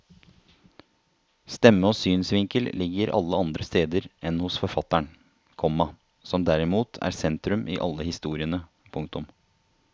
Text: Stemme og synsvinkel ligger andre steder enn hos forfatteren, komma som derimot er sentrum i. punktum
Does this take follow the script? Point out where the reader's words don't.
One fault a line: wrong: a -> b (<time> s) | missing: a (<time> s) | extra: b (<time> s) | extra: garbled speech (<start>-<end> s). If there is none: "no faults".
extra: alle (3.2 s)
extra: alle historiene (7.9 s)